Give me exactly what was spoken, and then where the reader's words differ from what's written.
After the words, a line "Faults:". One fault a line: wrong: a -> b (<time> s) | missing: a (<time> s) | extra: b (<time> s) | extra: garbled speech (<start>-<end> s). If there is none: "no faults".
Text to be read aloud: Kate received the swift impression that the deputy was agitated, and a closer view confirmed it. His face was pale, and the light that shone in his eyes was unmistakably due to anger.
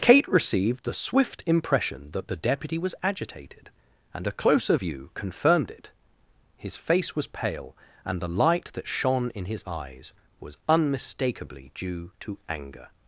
Kate received the swift impression that the deputy was agitated, and a closer view confirmed it. His face was pale, and the light that shone in his eyes was unmistakably due to anger.
Faults:
no faults